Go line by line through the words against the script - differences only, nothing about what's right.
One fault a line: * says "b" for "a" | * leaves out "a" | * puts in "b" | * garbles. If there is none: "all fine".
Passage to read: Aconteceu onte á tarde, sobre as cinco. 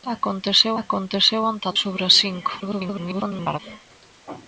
* puts in "aconteceu"
* leaves out "tarde"
* garbles